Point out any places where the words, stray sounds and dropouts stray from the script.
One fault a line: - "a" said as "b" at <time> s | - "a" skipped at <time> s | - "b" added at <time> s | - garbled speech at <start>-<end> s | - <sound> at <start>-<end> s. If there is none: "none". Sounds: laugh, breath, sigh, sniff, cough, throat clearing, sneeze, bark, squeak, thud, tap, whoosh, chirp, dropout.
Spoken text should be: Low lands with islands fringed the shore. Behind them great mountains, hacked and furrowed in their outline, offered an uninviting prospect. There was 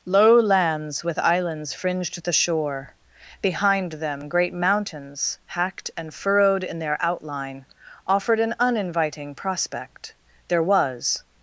none